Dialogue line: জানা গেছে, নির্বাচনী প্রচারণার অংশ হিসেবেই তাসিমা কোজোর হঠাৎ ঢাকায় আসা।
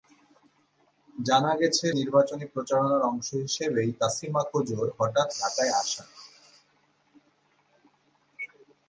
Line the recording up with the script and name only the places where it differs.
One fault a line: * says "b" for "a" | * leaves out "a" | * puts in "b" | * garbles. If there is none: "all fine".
all fine